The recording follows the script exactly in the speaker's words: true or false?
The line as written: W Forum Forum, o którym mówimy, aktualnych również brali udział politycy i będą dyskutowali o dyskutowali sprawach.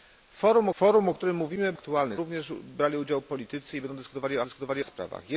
true